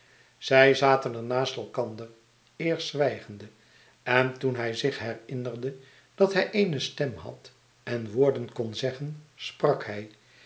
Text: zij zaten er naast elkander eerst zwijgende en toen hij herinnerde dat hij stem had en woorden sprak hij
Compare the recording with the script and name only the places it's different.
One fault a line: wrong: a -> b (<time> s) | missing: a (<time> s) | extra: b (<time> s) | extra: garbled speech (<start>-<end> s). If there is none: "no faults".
extra: zich (4.7 s)
extra: eene (6.5 s)
extra: kon zeggen (8.5 s)